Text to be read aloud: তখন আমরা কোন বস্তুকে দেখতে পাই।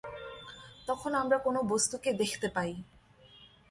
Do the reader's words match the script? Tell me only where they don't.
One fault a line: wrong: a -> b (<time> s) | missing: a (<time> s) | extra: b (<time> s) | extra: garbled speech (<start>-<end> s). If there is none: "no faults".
no faults